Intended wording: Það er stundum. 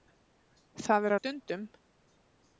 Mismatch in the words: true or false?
false